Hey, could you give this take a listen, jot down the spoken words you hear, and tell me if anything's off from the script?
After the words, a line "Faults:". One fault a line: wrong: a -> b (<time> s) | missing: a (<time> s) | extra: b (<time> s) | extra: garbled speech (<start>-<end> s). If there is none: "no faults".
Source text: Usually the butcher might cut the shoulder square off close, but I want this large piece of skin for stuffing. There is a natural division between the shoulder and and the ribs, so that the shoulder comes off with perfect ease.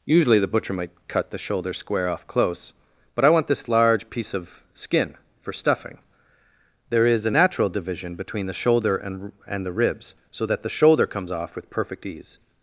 Usually the butcher might cut the shoulder square off close, but I want this large piece of skin for stuffing. There is a natural division between the shoulder and and the ribs, so that the shoulder comes off with perfect ease.
Faults:
no faults